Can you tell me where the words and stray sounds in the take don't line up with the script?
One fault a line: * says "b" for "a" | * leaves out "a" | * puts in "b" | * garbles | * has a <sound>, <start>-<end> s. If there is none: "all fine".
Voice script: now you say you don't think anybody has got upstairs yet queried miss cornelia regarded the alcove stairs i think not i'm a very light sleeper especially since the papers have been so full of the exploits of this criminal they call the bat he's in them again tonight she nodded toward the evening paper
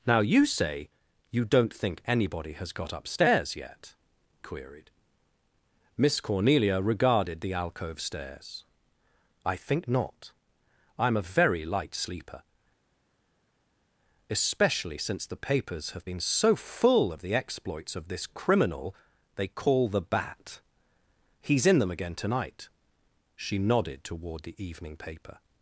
all fine